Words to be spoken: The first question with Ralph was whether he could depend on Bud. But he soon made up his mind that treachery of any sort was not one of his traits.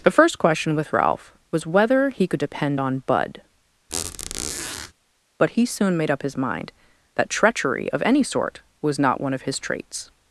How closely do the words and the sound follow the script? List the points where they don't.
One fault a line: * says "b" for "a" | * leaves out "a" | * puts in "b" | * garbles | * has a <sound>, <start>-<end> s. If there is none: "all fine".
* has a squeak, 3.9-4.9 s